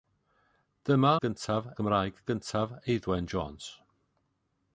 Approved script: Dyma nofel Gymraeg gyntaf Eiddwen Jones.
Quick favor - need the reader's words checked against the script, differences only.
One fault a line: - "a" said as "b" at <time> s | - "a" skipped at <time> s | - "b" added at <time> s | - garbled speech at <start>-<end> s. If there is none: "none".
- "nofel" said as "gyntaf" at 1.2 s